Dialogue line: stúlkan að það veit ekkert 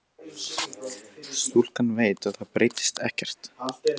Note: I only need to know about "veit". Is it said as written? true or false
false